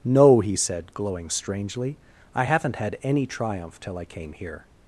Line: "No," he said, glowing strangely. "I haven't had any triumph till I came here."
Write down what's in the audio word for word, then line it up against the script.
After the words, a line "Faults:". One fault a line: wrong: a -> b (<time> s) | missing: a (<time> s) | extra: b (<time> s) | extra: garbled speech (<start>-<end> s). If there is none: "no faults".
"No," he said, glowing strangely. "I haven't had any triumph till I came here."
Faults:
no faults